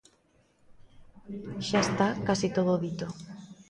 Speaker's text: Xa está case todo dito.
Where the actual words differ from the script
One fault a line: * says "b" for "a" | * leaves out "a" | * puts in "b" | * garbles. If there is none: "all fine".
all fine